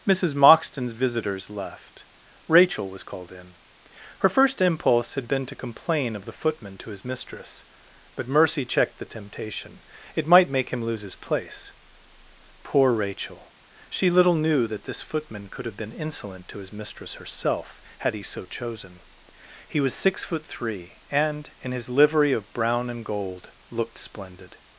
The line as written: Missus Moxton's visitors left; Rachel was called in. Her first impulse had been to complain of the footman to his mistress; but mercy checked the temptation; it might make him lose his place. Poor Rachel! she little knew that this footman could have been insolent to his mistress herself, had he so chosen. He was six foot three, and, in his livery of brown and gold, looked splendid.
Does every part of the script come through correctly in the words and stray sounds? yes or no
yes